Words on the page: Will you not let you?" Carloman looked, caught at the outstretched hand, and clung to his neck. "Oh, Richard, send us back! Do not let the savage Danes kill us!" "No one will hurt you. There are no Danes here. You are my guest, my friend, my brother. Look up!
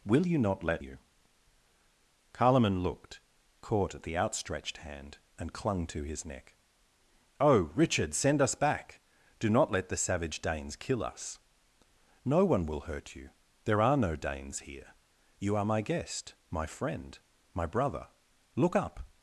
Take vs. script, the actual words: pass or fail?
pass